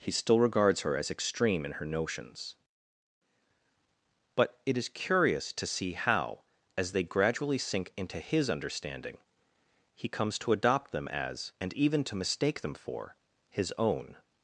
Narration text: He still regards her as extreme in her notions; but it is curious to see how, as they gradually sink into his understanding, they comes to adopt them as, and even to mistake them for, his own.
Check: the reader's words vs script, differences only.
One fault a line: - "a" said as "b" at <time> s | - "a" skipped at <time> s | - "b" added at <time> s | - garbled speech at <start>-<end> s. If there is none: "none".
- "they" said as "he" at 9.9 s